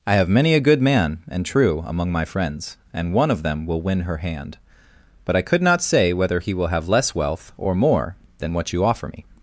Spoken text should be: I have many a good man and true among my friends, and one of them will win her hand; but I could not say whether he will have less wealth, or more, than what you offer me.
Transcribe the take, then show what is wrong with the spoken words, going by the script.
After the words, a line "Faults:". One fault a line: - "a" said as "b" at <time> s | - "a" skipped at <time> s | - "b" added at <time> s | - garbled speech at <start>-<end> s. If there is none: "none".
I have many a good man and true among my friends, and one of them will win her hand; but I could not say whether he will have less wealth, or more, than what you offer me.
Faults:
none